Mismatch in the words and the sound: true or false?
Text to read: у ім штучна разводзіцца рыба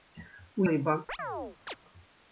true